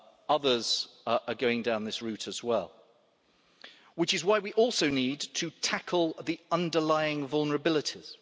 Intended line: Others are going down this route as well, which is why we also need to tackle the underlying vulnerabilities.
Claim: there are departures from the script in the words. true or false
false